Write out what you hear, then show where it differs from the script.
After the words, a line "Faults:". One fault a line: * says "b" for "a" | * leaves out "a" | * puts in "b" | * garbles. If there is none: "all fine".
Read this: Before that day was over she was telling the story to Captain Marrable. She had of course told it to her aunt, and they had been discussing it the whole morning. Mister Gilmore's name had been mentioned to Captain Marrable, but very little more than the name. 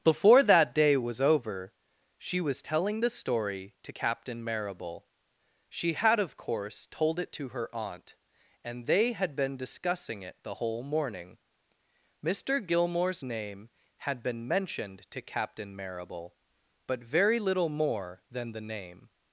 Before that day was over she was telling the story to Captain Marrable. She had of course told it to her aunt, and they had been discussing it the whole morning. Mister Gilmore's name had been mentioned to Captain Marrable, but very little more than the name.
Faults:
all fine